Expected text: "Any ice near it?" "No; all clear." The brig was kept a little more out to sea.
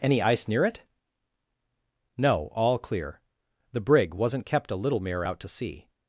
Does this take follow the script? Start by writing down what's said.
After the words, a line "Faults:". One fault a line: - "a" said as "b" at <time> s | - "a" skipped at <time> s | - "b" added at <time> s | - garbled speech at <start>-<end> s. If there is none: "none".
"Any ice near it?" "No; all clear." The brig wasn't kept a little mere out to sea.
Faults:
- "was" said as "wasn't" at 4.2 s
- "more" said as "mere" at 5.0 s